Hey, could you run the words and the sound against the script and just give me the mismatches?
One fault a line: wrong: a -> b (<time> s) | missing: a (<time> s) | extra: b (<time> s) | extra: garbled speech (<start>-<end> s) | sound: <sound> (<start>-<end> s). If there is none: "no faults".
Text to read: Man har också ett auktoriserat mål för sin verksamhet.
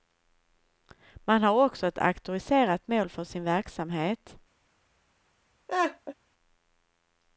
sound: laugh (5.7-6.1 s)